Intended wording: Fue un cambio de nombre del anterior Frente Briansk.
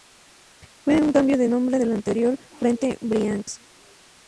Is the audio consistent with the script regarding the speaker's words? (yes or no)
yes